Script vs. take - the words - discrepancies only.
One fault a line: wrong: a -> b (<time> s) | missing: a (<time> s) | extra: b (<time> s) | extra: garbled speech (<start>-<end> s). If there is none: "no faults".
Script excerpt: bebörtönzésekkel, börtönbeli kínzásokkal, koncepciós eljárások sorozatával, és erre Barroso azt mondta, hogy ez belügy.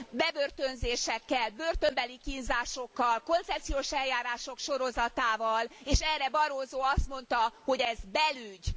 no faults